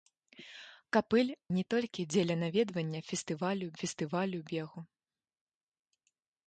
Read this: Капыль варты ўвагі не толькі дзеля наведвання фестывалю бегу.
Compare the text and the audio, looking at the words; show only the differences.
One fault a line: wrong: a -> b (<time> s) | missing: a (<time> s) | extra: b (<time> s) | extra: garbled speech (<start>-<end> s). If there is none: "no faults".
missing: варты ўвагі (1.3 s)
extra: фестывалю (3.8 s)